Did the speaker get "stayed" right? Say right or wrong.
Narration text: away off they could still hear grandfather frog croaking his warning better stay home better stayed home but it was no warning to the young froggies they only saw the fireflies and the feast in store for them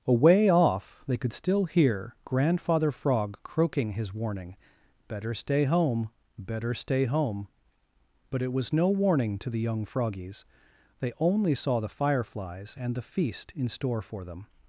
wrong